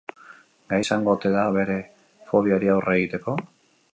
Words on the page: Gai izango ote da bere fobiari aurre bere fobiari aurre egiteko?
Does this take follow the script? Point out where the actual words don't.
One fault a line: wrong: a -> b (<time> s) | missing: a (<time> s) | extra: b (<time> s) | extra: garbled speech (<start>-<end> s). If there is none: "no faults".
missing: bere fobiari aurre (3.0 s)